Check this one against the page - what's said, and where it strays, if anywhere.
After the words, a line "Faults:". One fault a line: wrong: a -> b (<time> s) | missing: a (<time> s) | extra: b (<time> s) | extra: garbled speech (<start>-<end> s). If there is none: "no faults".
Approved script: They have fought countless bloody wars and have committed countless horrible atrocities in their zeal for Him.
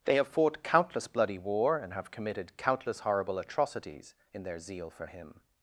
They have fought countless bloody war and have committed countless horrible atrocities in their zeal for Him.
Faults:
wrong: wars -> war (1.4 s)